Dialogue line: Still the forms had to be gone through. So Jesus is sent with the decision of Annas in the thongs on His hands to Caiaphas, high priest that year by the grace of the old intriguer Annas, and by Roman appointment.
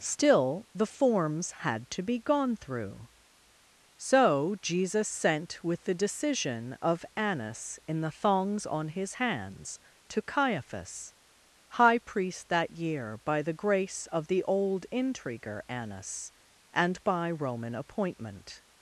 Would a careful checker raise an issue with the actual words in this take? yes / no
yes